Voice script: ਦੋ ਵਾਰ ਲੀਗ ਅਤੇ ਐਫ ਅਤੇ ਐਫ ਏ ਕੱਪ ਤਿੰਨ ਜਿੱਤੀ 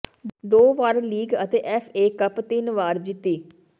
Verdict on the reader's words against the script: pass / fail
fail